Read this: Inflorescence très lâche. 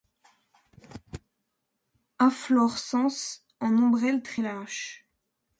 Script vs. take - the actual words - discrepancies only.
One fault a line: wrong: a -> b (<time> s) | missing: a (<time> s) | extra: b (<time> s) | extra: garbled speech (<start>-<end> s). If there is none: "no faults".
extra: en ombelle (3.6 s)